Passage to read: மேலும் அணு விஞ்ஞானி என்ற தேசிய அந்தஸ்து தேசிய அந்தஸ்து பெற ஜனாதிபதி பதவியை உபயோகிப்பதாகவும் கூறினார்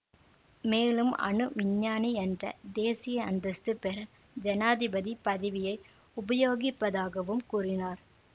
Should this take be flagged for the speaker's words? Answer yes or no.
yes